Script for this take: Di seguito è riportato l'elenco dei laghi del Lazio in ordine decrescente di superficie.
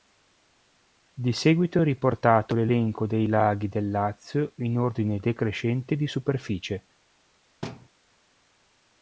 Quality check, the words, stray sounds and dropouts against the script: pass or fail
fail